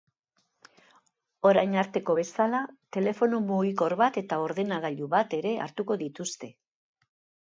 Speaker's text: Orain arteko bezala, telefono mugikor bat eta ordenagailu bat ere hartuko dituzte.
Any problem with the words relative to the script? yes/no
no